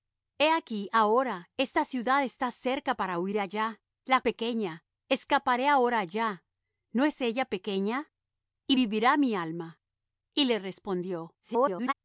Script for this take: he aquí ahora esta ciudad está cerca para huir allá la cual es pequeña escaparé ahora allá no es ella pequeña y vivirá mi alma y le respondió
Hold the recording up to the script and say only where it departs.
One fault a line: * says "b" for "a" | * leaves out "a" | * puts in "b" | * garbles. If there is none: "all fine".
* leaves out "cual es"
* garbles